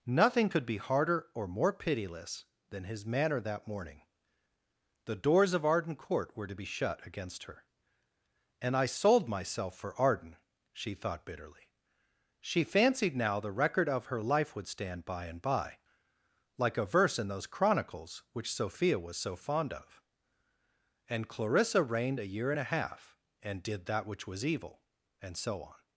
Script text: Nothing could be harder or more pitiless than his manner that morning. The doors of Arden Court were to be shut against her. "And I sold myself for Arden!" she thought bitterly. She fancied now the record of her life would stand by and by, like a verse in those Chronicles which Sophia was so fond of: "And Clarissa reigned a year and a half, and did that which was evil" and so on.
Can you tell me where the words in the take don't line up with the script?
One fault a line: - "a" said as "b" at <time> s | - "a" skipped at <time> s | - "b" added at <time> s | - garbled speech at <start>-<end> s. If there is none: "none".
none